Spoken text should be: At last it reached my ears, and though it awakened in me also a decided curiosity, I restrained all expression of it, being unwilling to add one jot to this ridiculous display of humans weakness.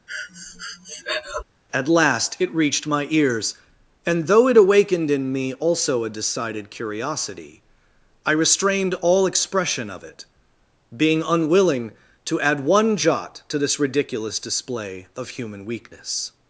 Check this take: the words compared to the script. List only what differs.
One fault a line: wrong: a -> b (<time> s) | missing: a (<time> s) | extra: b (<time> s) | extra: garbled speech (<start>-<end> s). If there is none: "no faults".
wrong: humans -> human (15.3 s)